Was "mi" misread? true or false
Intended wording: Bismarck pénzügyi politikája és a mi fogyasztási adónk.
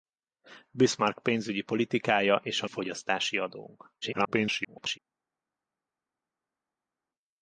true